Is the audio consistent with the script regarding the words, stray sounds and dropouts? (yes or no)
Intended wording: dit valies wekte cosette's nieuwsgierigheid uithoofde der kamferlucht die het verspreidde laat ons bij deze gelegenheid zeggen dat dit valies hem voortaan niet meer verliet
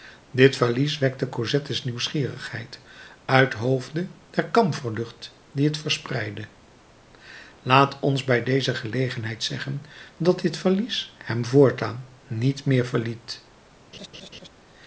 no